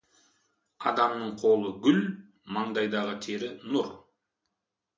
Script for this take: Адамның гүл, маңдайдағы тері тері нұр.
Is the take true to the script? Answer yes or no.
no